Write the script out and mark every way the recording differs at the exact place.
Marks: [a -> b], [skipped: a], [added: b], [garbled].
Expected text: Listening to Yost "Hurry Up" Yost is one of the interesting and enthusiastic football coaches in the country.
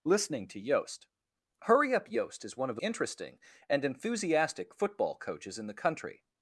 Listening to Yost "Hurry Up" Yost is one of the interesting and enthusiastic football coaches in the country.